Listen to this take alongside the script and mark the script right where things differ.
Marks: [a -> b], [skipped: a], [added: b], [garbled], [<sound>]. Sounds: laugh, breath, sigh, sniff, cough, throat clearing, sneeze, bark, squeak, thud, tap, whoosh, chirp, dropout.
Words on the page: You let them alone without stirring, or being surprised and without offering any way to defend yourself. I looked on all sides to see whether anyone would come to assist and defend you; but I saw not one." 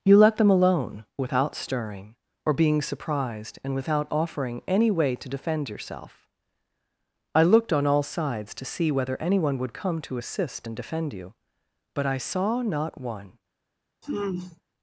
You let them alone without stirring, or being surprised and without offering any way to defend yourself. I looked on all sides to see whether anyone would come to assist and defend you; but I saw not one." [sigh]